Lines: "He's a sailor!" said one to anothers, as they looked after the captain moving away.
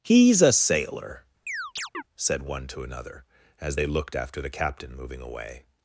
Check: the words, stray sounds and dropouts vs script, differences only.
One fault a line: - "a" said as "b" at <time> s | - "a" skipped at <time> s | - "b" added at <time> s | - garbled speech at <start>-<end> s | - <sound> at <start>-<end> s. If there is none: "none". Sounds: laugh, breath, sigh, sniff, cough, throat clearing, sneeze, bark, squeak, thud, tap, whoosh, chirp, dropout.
- chirp at 1.5-2.0 s
- "anothers" said as "another" at 2.8 s